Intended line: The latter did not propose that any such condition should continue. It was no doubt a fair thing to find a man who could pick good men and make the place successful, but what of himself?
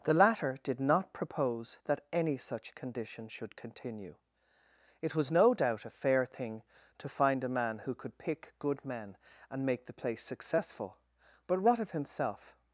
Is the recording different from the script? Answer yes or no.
no